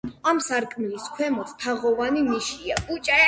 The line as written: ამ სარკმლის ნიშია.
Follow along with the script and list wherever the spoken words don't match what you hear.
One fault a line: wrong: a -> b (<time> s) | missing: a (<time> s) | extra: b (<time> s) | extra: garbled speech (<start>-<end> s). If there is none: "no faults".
extra: ქვემოთ თაღოვანი (1.2 s)